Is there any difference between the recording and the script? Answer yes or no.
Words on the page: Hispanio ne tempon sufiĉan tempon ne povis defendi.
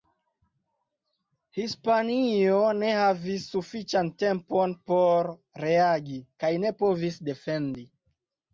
yes